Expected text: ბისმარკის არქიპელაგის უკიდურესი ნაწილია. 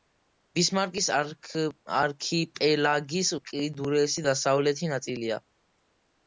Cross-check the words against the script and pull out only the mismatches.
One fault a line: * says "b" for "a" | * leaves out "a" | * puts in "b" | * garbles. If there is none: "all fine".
* puts in "დასავლეთი"